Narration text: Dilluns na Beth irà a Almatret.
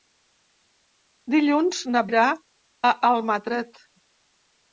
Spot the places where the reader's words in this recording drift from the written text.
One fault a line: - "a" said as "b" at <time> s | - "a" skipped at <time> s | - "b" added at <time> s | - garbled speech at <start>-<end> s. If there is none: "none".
- "Beth" skipped at 2.0 s